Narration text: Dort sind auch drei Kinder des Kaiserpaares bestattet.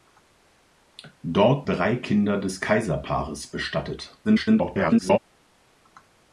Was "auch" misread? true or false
true